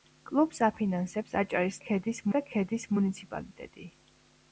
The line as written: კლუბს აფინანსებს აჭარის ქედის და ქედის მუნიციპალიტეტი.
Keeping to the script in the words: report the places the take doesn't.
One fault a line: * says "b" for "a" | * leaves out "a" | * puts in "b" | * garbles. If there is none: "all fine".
all fine